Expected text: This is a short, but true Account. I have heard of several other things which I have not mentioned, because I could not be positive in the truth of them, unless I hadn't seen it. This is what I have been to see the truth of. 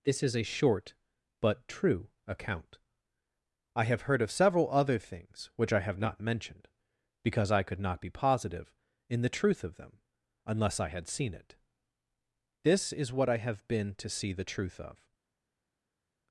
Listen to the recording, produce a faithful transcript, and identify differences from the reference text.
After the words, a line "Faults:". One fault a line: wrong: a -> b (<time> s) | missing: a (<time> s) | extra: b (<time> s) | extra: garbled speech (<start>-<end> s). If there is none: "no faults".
This is a short, but true Account. I have heard of several other things which I have not mentioned, because I could not be positive in the truth of them, unless I had seen it. This is what I have been to see the truth of.
Faults:
wrong: hadn't -> had (10.9 s)